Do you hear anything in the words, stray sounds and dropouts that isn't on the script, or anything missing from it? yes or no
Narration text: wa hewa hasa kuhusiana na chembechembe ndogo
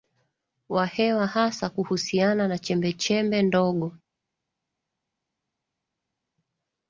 no